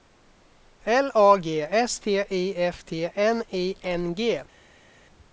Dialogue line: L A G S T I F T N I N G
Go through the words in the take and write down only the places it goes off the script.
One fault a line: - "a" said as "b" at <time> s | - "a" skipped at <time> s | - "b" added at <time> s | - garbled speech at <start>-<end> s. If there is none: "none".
none